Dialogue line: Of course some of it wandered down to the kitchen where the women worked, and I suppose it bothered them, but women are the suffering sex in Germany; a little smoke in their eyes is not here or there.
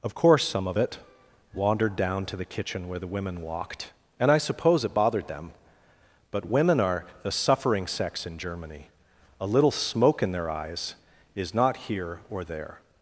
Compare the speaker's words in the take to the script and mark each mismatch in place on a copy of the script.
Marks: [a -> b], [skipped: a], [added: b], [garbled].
Of course some of it wandered down to the kitchen where the women [worked, -> walked] and I suppose it bothered them, but women are the suffering sex in Germany; a little smoke in their eyes is not here or there.